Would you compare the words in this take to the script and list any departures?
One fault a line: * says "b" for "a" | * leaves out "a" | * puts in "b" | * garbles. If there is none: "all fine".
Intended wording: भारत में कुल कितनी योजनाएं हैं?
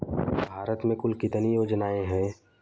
all fine